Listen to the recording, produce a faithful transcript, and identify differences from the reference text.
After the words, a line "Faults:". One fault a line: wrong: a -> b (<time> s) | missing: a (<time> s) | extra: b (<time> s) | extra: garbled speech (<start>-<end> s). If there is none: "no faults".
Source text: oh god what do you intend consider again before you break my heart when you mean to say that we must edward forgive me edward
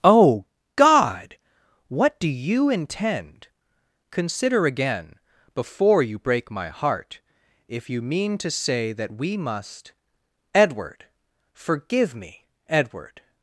oh god what do you intend consider again before you break my heart if you mean to say that we must edward forgive me edward
Faults:
wrong: when -> if (7.7 s)